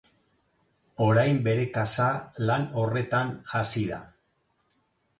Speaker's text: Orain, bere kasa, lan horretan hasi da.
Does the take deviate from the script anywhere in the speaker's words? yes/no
no